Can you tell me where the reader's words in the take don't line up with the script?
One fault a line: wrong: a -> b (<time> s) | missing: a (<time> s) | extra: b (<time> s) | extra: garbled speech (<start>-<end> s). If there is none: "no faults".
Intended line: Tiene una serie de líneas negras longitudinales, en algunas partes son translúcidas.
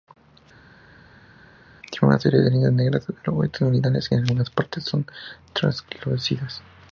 no faults